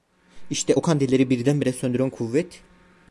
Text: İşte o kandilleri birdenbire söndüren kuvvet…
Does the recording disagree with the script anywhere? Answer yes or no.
no